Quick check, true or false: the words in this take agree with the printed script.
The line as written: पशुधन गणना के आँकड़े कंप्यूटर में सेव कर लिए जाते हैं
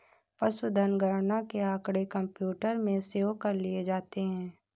true